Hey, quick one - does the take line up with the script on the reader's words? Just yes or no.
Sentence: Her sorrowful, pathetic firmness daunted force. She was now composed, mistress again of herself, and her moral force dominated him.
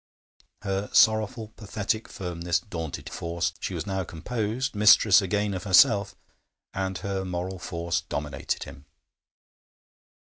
yes